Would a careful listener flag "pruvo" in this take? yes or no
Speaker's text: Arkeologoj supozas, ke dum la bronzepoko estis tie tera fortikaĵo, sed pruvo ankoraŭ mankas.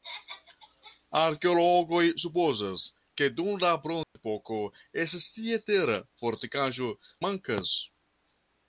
yes